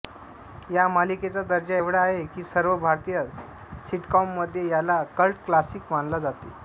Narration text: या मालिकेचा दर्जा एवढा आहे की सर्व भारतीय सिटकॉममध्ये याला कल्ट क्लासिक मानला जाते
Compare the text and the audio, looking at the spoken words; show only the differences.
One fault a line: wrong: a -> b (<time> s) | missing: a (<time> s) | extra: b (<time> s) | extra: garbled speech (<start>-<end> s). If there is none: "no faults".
no faults